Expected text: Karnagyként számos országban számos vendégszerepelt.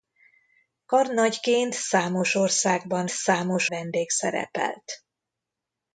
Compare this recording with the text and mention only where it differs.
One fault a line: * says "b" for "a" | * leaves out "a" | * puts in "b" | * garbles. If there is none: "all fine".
all fine